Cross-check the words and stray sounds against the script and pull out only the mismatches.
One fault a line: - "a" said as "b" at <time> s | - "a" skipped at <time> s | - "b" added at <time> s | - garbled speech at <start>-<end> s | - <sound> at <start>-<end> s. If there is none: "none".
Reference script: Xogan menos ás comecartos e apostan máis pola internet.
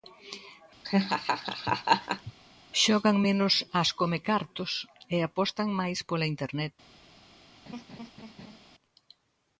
- laugh at 0.8-2.3 s
- laugh at 7.7-8.6 s